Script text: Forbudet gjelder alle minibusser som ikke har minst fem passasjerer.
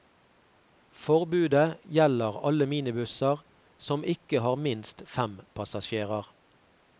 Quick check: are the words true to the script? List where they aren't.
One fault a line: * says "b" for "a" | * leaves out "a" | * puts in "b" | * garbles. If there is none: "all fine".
all fine